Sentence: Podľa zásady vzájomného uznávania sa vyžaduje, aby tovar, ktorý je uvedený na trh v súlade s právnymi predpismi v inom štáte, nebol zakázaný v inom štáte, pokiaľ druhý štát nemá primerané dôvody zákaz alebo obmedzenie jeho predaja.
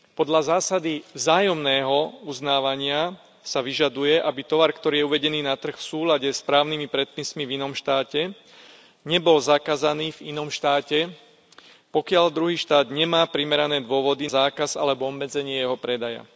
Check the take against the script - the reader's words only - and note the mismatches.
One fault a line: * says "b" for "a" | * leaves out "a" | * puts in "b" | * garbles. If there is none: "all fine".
all fine